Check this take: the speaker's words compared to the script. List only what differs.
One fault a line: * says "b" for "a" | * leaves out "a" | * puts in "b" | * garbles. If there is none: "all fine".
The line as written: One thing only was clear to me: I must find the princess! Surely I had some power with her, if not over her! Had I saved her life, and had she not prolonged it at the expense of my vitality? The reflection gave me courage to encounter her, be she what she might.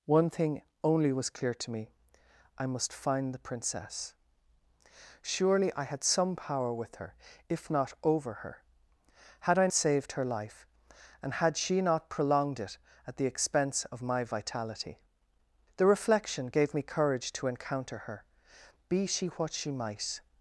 all fine